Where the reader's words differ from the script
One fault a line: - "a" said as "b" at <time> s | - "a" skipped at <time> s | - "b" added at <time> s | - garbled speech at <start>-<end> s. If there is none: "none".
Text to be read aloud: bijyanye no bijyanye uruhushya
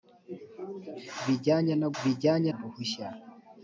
none